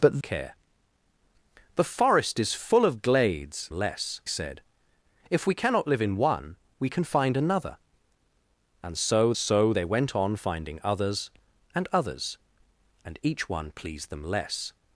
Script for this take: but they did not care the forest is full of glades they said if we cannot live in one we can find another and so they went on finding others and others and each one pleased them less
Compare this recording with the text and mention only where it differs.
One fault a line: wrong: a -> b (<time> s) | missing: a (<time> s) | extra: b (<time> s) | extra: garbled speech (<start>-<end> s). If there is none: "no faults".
missing: they did not (0.2 s)
wrong: they -> less (3.7 s)
extra: so (9.4 s)